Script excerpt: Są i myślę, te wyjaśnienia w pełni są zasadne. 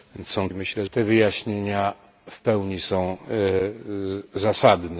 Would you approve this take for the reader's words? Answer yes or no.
yes